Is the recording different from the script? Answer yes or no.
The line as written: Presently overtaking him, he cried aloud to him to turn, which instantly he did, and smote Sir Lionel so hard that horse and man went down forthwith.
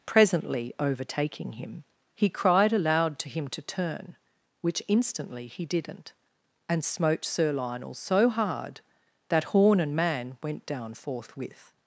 yes